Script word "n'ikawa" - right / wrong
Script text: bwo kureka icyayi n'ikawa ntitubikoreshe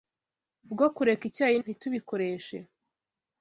wrong